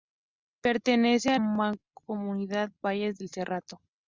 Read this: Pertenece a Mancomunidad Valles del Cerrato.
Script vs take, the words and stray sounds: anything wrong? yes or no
no